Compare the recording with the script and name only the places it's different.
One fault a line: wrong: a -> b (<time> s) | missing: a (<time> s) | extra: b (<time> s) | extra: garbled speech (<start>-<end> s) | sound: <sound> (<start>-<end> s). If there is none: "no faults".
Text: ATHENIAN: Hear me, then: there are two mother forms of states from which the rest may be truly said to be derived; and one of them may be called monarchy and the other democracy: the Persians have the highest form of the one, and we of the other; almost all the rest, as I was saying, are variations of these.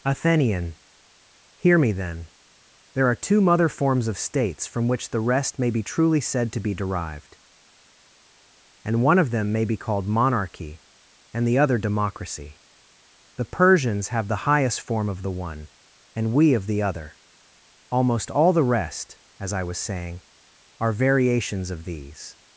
no faults